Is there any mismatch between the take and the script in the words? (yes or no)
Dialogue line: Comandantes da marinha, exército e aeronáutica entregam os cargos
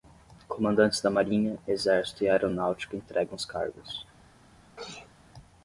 no